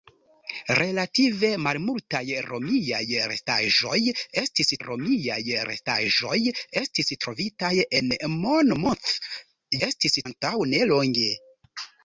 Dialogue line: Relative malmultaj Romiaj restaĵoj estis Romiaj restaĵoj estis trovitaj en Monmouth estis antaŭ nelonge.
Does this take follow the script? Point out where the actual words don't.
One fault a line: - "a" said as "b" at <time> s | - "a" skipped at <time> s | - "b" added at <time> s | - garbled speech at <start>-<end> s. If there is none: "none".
none